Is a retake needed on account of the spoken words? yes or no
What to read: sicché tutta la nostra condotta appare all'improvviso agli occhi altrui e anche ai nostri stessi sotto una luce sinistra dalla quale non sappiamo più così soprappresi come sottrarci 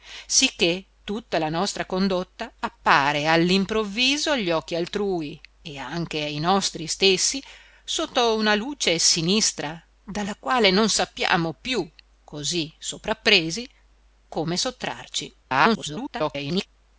yes